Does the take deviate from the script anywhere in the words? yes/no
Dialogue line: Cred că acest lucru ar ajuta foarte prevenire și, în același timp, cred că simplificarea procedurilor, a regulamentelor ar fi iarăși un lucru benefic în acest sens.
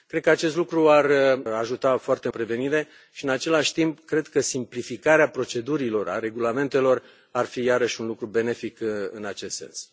no